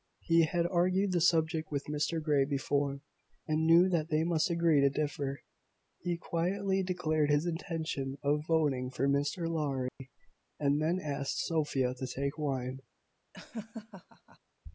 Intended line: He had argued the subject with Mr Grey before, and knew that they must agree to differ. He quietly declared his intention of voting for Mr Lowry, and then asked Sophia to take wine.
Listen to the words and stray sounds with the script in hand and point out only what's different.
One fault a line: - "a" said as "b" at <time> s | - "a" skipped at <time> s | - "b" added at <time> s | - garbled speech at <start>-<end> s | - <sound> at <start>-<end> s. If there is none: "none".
- dropout at 9.9-10.0 s
- laugh at 13.3-14.4 s